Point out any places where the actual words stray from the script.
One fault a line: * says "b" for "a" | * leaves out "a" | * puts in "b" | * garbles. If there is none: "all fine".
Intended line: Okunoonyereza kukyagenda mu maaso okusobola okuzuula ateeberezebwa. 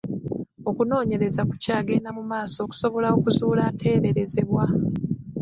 all fine